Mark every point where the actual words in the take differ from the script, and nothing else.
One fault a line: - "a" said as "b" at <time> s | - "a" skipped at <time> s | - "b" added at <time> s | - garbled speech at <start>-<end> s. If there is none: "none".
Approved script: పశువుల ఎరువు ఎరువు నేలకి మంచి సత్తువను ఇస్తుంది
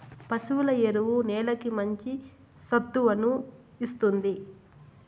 - "ఎరువు" skipped at 1.1 s